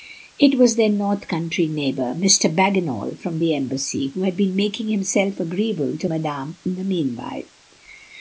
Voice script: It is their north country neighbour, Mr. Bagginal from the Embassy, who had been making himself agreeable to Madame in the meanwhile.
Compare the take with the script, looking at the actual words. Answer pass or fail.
fail